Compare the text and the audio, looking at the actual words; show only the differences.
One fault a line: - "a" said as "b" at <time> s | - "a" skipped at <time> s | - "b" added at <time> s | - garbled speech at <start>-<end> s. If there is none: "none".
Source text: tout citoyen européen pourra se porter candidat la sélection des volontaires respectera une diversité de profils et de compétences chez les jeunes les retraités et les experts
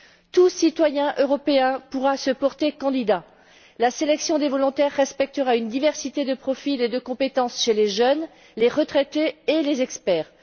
none